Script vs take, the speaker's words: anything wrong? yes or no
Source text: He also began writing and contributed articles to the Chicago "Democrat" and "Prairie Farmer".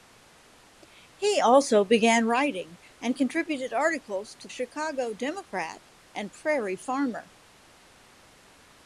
yes